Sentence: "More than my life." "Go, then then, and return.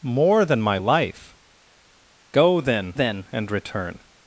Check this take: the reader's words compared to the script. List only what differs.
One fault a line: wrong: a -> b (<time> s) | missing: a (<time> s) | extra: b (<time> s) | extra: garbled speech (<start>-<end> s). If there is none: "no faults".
no faults